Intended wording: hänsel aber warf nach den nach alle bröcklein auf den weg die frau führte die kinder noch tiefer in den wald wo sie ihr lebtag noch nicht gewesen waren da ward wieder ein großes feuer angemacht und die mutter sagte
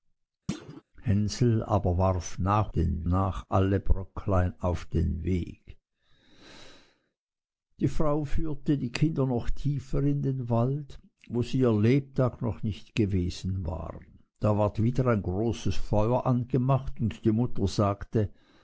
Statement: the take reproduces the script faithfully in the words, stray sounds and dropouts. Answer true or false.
false